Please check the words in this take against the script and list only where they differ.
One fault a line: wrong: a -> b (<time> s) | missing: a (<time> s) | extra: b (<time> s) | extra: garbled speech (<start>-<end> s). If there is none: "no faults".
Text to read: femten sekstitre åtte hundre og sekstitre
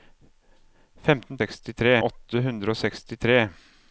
no faults